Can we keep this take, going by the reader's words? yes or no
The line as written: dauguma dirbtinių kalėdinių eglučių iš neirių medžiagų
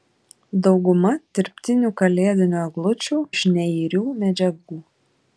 yes